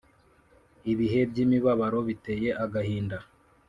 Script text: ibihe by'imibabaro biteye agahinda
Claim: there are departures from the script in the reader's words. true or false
false